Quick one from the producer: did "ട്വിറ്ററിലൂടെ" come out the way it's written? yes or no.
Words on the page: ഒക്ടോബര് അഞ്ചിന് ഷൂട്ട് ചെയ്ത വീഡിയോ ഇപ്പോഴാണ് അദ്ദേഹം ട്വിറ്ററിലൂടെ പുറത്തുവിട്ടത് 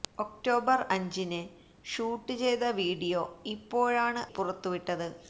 no